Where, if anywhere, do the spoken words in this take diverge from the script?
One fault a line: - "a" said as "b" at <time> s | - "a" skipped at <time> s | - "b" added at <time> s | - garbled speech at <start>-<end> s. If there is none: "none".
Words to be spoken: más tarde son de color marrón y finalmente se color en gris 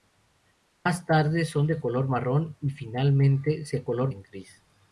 none